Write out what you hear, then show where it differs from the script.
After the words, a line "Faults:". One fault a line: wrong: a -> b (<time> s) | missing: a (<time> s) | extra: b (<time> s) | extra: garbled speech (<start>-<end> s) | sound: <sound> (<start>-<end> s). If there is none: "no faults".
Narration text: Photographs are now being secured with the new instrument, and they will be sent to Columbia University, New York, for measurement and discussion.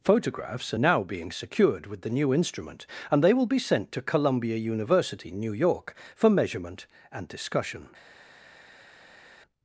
Photographs are now being secured with the new instrument, and they will be sent to Columbia University, New York, for measurement and discussion.
Faults:
no faults